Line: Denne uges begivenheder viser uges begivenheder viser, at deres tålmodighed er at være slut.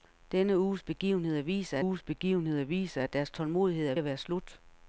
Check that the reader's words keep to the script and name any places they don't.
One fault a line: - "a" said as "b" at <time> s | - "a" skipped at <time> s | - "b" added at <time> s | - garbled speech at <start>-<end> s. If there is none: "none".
none